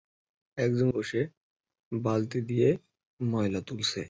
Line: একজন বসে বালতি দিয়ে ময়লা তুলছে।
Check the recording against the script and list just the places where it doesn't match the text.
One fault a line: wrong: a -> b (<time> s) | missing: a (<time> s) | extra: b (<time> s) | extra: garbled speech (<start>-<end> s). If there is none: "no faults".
no faults